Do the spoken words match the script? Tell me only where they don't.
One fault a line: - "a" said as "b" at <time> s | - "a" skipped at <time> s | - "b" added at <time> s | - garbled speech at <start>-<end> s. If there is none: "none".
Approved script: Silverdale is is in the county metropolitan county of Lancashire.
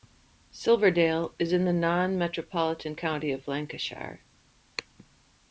- "is" skipped at 1.5 s
- "county" said as "non" at 1.7 s